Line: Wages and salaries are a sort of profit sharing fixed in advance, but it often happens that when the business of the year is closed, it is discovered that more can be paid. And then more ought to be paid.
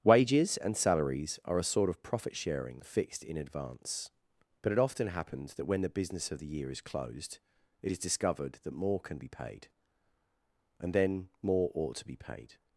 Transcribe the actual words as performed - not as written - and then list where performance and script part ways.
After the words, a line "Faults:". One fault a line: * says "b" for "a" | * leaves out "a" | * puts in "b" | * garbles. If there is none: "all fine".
Wages and salaries are a sort of profit sharing fixed in advance, but it often happens that when the business of the year is closed, it is discovered that more can be paid. And then more ought to be paid.
Faults:
all fine